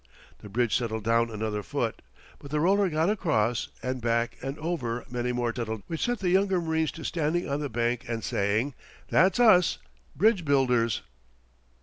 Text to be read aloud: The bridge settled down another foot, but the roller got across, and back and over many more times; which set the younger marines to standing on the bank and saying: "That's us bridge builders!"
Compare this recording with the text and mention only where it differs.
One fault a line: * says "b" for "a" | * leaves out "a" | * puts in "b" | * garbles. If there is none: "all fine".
* says "settled" for "times"